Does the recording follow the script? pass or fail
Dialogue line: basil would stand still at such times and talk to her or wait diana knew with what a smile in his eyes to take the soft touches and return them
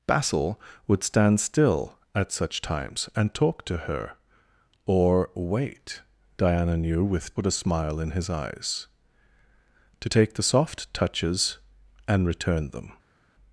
pass